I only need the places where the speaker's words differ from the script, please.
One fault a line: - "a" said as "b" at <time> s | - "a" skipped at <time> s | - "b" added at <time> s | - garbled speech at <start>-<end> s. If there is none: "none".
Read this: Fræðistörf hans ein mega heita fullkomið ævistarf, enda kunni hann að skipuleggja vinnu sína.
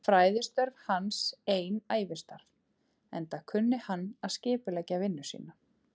- "mega heita fullkomið" skipped at 1.8 s